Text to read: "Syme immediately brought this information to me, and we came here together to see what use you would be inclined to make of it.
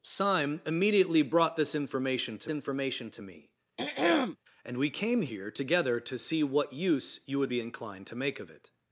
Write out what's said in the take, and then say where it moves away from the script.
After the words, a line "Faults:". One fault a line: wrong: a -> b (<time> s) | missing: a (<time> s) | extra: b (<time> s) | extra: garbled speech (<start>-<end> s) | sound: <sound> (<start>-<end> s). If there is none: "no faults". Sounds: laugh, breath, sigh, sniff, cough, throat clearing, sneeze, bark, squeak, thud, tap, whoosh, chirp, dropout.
"Syme immediately brought this information to information to me, and we came here together to see what use you would be inclined to make of it.
Faults:
extra: information to (2.5 s)
sound: throat clearing (3.8-4.4 s)